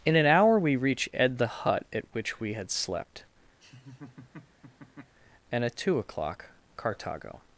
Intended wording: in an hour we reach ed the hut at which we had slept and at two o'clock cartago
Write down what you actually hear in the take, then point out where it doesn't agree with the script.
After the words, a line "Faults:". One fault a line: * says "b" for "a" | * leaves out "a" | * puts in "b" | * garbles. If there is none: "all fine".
in an hour we reach ed the hut at which we had slept and at two o'clock cartago
Faults:
all fine